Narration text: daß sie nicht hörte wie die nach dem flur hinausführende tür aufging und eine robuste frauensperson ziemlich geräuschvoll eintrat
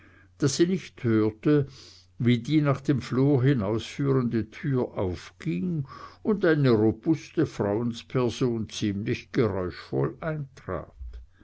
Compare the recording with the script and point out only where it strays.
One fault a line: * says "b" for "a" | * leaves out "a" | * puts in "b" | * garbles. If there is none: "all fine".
all fine